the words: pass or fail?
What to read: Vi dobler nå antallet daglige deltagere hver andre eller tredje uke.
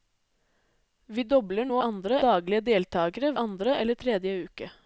fail